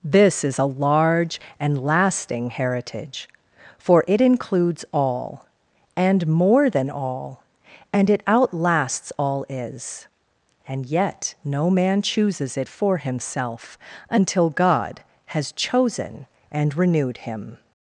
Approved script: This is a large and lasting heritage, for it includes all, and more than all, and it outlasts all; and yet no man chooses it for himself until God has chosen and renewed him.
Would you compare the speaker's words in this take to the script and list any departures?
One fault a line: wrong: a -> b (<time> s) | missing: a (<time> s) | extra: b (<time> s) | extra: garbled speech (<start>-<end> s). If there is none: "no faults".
extra: is (9.5 s)